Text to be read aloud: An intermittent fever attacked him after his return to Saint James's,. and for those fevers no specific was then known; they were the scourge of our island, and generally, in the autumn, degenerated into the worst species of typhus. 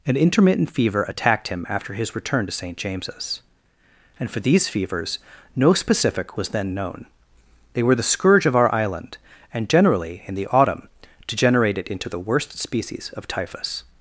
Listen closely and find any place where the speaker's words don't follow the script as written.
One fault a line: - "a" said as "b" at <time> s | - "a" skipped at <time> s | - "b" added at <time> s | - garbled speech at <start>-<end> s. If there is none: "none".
- "those" said as "these" at 4.4 s